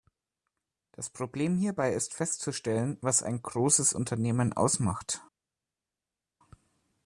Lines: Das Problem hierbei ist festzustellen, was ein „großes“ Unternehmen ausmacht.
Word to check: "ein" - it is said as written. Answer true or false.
true